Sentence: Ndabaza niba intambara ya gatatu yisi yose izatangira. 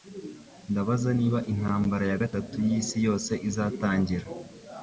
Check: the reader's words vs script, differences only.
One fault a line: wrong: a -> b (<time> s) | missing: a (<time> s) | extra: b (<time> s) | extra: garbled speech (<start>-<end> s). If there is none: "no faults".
no faults